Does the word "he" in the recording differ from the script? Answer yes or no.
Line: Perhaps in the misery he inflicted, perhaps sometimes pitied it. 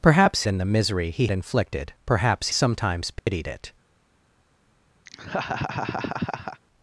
no